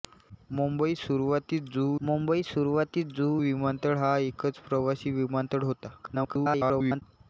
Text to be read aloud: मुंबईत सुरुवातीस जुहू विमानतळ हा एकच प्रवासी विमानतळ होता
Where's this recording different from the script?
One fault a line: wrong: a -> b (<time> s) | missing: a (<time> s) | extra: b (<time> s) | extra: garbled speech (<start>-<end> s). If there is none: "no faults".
extra: मुंबईत सुरुवातीस जुहू (2.0 s)
extra: garbled speech (6.0-7.0 s)